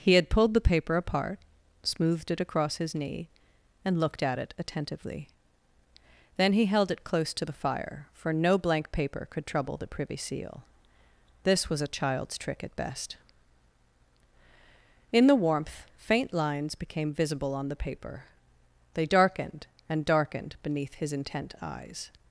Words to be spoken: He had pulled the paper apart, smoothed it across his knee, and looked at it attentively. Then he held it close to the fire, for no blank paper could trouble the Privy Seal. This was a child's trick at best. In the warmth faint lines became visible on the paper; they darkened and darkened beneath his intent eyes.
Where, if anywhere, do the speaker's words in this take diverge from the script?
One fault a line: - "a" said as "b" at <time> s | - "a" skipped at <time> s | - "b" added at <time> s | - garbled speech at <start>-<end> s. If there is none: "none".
none